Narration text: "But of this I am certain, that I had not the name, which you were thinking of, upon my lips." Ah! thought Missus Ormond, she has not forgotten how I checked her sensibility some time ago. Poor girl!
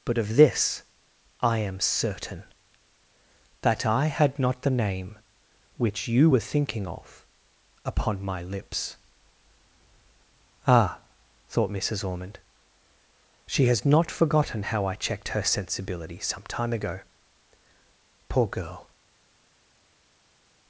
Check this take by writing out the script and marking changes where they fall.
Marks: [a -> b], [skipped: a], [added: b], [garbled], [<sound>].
"But of this I am certain, that I had not the name, which you were thinking of, upon my lips." Ah! thought Missus Ormond, she has not forgotten how I checked her sensibility some time ago. Poor girl!